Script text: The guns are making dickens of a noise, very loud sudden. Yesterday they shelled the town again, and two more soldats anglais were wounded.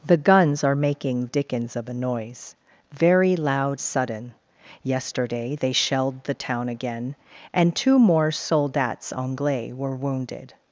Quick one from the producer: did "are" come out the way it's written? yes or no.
yes